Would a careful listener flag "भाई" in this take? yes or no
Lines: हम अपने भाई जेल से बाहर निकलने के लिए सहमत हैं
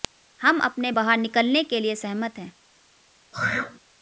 yes